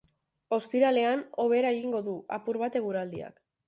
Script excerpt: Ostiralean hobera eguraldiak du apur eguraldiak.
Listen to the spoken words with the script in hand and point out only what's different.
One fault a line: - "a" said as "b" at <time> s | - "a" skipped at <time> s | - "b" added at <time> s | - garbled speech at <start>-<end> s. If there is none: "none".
- "eguraldiak" said as "egingo" at 1.8 s
- "bat" added at 2.7 s